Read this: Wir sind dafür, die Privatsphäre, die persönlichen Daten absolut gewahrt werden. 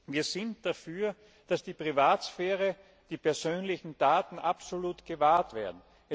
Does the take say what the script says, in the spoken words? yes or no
no